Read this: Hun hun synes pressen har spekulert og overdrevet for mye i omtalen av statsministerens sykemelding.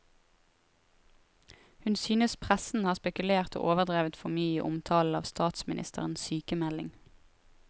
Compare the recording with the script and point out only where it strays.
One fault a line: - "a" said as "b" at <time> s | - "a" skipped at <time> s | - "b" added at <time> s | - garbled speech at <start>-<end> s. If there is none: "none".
- "hun" skipped at 1.9 s